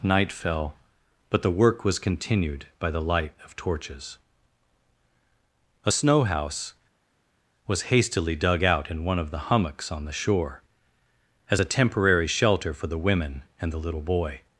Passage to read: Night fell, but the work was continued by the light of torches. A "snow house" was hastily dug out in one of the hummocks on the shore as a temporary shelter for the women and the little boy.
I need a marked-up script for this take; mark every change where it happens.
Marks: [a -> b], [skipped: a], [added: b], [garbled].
Night fell, but the work was continued by the light of torches. A "snow house" was hastily dug out in one of the hummocks on the shore as a temporary shelter for the women and the little boy.